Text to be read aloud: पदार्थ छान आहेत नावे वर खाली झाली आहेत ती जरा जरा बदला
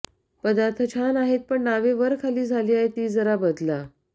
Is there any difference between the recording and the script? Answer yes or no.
yes